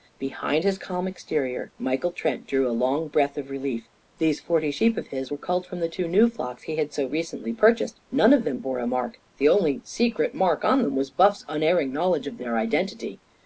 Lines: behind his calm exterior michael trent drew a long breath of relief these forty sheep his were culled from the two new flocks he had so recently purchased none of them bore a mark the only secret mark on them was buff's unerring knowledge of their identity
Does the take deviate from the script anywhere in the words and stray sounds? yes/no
yes